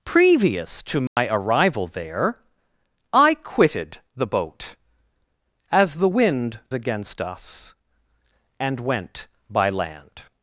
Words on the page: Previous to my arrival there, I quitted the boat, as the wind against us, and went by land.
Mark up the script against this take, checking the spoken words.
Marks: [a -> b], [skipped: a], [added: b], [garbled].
Previous to my arrival there, I quitted the boat, as the wind against us, and went by land.